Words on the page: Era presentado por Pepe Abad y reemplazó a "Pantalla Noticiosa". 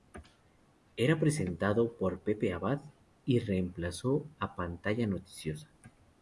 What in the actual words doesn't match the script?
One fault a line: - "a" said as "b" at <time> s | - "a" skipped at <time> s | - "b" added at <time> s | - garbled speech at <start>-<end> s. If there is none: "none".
none